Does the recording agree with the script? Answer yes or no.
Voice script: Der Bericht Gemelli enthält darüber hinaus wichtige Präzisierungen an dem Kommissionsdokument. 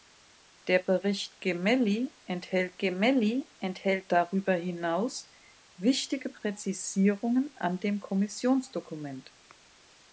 no